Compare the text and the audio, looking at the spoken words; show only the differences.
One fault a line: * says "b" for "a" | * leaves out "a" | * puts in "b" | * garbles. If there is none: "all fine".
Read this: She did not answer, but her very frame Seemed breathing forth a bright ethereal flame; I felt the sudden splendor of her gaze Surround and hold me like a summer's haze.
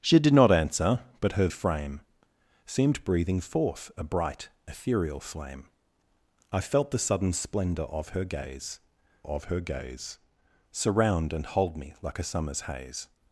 * leaves out "very"
* puts in "of her gaze"